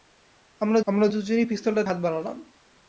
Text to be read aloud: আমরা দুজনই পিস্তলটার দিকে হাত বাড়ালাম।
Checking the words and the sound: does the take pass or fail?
fail